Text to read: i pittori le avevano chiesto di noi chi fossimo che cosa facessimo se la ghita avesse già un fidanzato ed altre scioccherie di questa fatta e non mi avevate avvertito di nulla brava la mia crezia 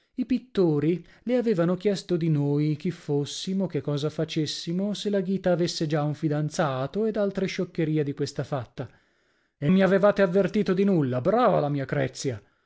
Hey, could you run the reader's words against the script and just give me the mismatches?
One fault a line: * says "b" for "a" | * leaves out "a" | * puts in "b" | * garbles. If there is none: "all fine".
* leaves out "non"